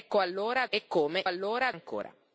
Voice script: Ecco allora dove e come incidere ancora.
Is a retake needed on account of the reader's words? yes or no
yes